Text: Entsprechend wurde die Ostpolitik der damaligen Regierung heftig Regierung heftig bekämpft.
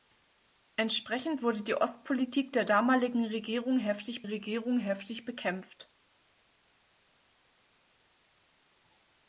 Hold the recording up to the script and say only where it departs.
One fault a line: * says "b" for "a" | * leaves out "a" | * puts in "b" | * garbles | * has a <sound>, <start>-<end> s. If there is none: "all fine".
all fine